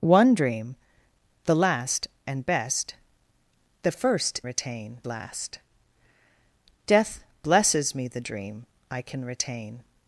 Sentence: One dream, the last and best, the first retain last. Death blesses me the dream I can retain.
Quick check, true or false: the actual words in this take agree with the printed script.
true